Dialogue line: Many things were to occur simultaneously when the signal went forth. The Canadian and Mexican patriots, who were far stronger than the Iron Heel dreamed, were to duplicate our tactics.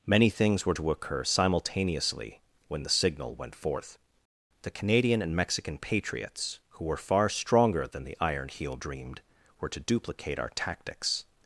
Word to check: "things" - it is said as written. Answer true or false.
true